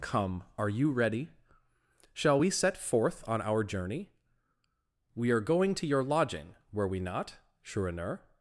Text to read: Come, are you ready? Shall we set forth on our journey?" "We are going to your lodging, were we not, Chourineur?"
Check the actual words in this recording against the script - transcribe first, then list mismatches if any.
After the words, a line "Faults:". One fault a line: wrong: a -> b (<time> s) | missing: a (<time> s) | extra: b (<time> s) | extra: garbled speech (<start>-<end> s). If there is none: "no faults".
Come, are you ready? Shall we set forth on our journey?" "We are going to your lodging, were we not, Chourineur?"
Faults:
no faults